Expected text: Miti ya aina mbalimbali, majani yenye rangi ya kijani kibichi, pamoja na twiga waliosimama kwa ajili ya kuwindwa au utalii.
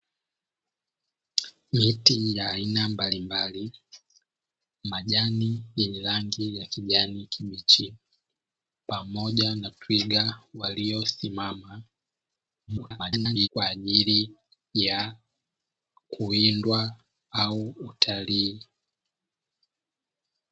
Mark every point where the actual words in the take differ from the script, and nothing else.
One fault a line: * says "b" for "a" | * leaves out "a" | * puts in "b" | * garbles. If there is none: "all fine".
* garbles